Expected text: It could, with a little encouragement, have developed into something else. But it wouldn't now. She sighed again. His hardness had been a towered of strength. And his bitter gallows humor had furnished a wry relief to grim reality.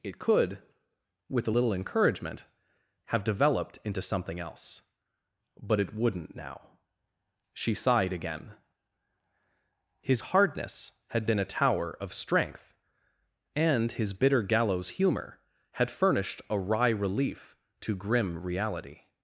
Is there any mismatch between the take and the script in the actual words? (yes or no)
yes